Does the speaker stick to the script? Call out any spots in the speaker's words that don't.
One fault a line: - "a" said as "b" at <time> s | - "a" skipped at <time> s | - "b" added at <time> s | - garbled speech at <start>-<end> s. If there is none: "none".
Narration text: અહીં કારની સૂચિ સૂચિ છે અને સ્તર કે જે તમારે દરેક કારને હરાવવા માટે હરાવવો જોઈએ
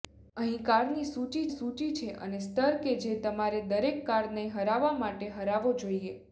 none